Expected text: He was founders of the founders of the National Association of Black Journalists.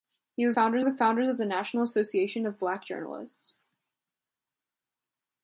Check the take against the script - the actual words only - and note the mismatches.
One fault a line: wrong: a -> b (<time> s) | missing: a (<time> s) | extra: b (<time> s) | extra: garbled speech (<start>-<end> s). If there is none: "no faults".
no faults